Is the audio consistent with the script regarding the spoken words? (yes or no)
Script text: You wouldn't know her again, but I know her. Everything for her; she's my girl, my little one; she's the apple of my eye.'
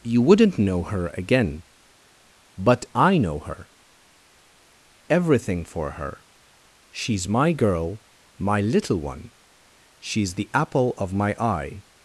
yes